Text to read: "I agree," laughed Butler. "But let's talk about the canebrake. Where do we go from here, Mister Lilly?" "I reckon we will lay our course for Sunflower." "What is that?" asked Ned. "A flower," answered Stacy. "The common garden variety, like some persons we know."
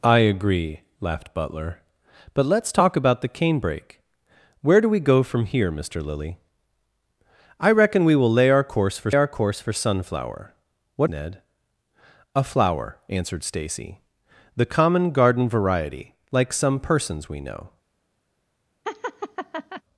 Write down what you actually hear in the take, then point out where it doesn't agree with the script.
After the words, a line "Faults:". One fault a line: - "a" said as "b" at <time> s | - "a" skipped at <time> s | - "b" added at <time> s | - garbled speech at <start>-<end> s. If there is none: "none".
"I agree," laughed Butler. "But let's talk about the canebrake. Where do we go from here, Mister Lilly?" "I reckon we will lay our course for our course for Sunflower." "What Ned. "A flower," answered Stacy. "The common garden variety, like some persons we know."
Faults:
- "Sunflower What is that asked" said as "our course for Sunflower What" at 9.1 s